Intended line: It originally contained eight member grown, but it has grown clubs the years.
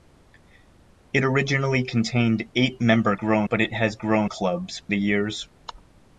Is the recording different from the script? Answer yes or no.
no